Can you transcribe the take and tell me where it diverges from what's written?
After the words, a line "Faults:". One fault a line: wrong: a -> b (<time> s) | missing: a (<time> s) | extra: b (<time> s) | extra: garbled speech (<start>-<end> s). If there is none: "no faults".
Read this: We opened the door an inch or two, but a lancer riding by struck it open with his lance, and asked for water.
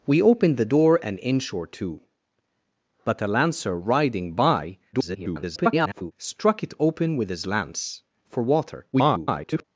We opened the door an inch or two, but a lancer riding by [garbled] struck it open with his lance, for water. [garbled]
Faults:
extra: garbled speech (4.9-6.1 s)
missing: and asked (8.0 s)
extra: garbled speech (8.9-9.6 s)